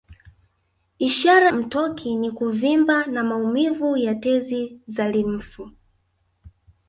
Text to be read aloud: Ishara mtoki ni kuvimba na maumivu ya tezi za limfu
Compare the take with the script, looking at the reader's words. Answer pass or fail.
pass